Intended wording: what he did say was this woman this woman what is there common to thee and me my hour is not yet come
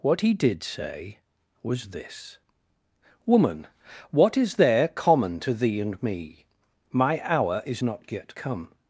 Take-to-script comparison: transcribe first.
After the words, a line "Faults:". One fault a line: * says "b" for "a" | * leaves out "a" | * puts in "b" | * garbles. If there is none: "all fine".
what he did say was this woman what is there common to thee and me my hour is not yet come
Faults:
* leaves out "this woman"